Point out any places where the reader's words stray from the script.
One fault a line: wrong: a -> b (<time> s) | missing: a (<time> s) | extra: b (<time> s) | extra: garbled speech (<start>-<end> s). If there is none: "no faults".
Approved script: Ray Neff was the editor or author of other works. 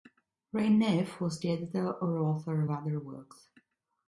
no faults